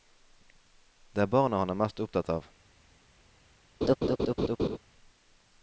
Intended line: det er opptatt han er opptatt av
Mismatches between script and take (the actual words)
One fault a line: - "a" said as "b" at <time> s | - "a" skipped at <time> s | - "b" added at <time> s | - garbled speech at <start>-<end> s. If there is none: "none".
- "opptatt" said as "barna" at 1.4 s
- "mest" added at 1.8 s